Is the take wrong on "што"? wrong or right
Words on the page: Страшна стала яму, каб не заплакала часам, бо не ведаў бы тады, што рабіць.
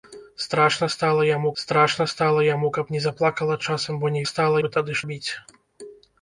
wrong